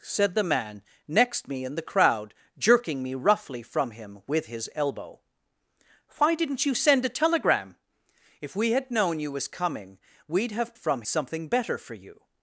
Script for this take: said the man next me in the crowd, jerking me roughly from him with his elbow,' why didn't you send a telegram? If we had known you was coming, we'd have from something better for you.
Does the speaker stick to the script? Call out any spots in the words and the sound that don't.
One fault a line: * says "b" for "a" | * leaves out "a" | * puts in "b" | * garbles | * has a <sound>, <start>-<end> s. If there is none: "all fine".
all fine